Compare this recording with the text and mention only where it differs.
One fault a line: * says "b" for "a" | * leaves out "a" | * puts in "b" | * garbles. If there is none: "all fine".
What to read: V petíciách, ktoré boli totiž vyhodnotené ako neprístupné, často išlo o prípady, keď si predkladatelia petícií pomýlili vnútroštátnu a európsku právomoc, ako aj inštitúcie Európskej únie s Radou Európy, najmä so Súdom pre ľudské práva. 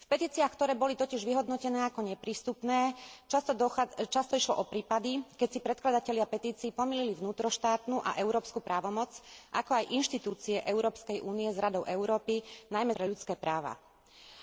* leaves out "so Súdom"